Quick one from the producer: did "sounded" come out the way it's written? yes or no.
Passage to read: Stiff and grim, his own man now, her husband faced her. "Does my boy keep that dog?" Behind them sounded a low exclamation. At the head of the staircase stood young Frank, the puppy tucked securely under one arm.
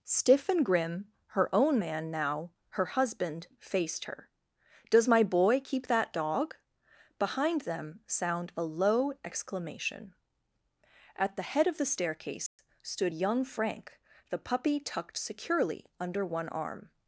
no